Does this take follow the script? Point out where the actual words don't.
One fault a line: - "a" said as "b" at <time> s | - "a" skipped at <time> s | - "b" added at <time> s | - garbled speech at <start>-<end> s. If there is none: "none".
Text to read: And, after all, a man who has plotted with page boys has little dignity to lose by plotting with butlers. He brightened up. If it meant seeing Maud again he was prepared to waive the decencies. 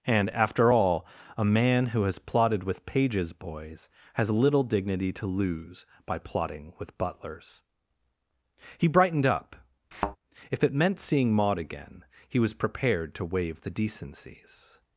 - "page" said as "pages" at 2.9 s